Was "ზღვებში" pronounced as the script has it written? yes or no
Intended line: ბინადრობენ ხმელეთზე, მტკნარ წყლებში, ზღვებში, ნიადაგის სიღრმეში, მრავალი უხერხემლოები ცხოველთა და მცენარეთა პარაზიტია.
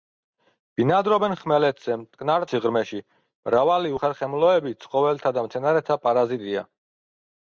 no